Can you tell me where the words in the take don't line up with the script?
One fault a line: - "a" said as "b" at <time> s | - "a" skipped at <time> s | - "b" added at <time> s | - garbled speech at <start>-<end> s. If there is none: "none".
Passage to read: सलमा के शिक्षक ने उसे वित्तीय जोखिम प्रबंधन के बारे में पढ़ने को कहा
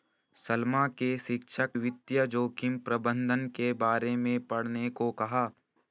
- "ने उसे" skipped at 1.7 s